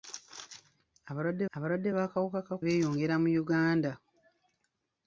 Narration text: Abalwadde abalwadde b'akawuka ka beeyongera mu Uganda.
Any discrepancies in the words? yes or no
no